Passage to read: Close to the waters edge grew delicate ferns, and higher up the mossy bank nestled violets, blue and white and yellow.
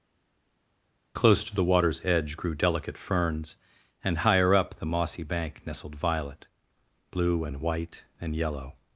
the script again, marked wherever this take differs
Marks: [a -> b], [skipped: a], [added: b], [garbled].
Close to the waters edge grew delicate ferns, and higher up the mossy bank nestled [violets, -> violet] blue and white and yellow.